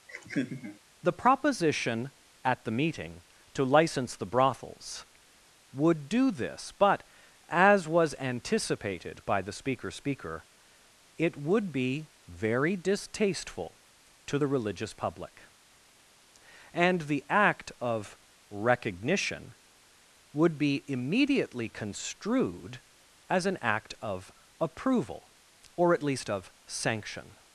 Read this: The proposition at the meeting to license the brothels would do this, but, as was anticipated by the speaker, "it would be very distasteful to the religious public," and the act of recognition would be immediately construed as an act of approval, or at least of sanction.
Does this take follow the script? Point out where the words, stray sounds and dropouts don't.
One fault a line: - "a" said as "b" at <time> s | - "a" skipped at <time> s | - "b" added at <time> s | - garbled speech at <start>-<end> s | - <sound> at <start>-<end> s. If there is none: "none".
- laugh at 0.1-0.8 s
- "speaker" added at 9.9 s